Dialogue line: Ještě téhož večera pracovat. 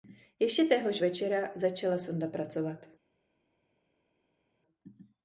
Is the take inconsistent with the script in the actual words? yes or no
yes